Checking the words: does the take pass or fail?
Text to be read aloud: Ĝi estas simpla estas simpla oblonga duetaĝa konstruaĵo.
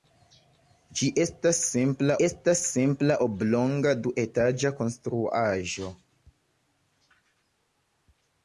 pass